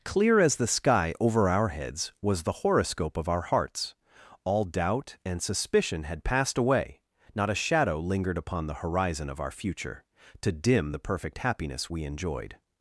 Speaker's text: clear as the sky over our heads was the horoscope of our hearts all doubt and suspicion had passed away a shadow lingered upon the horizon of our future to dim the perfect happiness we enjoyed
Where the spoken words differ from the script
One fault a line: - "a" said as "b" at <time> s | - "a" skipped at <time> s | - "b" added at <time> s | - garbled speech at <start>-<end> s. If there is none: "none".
- "not" added at 7.3 s